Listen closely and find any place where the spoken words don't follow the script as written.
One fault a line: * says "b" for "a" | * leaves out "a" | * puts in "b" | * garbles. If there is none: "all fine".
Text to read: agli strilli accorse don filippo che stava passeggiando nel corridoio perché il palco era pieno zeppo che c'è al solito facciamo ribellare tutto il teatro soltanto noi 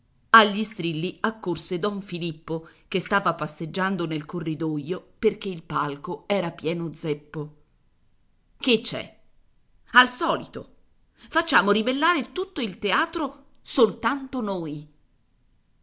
all fine